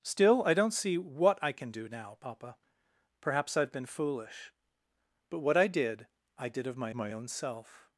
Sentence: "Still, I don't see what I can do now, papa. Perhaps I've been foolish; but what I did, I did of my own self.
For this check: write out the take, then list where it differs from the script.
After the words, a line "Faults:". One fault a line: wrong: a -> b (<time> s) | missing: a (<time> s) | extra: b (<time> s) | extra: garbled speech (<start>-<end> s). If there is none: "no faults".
"Still, I don't see what I can do now, papa. Perhaps I've been foolish; but what I did, I did of my my own self.
Faults:
extra: my (6.9 s)